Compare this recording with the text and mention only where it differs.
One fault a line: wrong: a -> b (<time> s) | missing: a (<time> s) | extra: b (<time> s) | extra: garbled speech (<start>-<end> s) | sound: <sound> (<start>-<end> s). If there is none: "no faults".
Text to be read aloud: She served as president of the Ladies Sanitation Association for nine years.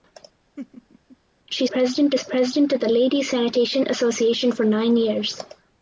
sound: laugh (0.6-1.2 s)
wrong: served -> president (1.7 s)